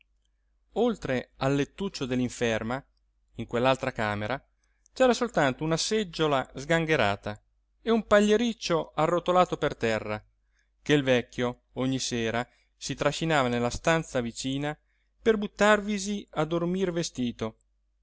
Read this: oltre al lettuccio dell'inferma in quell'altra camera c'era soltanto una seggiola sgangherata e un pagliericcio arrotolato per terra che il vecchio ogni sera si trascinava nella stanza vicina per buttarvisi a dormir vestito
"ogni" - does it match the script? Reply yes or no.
yes